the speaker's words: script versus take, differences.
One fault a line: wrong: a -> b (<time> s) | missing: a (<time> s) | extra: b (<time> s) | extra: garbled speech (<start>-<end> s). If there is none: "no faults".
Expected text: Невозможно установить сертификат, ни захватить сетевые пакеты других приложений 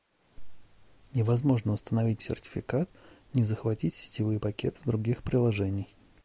no faults